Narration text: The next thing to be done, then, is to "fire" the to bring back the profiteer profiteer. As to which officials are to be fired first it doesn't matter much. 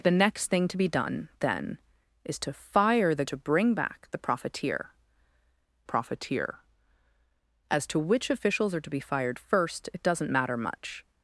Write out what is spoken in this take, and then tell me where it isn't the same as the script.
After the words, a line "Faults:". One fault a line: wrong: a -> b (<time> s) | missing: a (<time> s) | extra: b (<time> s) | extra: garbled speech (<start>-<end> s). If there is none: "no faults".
The next thing to be done, then, is to "fire" the to bring back the profiteer profiteer. As to which officials are to be fired first it doesn't matter much.
Faults:
no faults